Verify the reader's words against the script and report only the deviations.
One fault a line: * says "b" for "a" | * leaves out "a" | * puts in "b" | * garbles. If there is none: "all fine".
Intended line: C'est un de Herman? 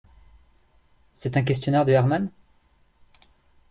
* puts in "questionnaire"